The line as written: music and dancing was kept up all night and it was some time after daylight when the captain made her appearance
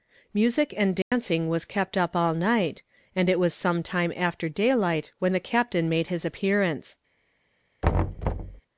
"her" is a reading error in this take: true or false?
true